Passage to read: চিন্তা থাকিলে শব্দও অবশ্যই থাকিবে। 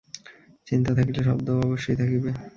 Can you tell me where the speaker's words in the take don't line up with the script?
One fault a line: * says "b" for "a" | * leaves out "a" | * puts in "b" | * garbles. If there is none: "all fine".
all fine